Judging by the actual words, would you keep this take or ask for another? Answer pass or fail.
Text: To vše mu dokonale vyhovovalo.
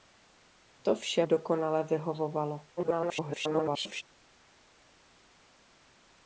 fail